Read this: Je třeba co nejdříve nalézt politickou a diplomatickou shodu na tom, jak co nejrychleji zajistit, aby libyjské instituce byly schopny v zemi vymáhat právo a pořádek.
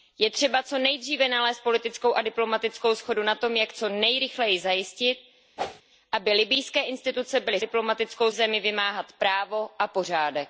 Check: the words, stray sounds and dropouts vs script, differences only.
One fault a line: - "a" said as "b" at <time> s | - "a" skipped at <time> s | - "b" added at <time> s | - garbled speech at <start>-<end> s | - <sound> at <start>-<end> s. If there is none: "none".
- whoosh at 5.6-5.8 s
- "schopny" said as "diplomatickou" at 7.6 s